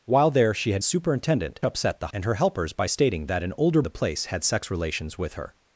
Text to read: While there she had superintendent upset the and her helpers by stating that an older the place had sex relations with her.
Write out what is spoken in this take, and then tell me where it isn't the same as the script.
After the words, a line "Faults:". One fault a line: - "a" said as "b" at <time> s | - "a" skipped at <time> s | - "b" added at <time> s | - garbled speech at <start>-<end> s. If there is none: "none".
While there she had superintendent upset the and her helpers by stating that an older the place had sex relations with her.
Faults:
none